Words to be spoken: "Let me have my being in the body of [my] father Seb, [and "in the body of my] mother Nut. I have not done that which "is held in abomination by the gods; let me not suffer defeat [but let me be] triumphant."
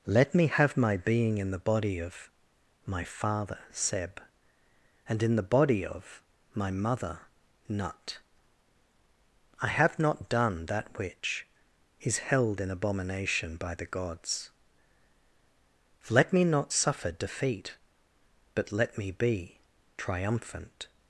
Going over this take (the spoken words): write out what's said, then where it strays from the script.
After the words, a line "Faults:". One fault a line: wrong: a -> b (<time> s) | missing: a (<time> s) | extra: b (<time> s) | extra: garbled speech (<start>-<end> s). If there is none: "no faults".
"Let me have my being in the body of [my] father Seb, [and "in the body of my] mother Nut. I have not done that which "is held in abomination by the gods; let me not suffer defeat [but let me be] triumphant."
Faults:
no faults